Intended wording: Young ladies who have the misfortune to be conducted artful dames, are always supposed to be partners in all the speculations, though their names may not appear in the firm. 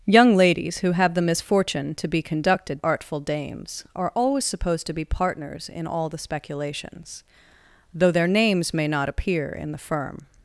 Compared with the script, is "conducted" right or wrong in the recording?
right